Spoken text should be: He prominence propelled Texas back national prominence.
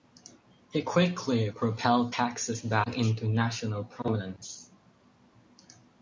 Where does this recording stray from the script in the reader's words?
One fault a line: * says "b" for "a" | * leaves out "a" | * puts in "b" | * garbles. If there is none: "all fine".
* says "quickly" for "prominence"
* puts in "into"